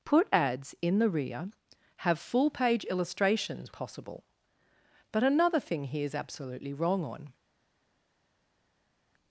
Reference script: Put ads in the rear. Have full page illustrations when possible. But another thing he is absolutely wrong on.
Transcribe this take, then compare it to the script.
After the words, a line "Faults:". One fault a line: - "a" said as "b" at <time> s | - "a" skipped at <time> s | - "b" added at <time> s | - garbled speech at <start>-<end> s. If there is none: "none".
Put ads in the rear. Have full page illustrations possible. But another thing he is absolutely wrong on.
Faults:
- "when" skipped at 3.7 s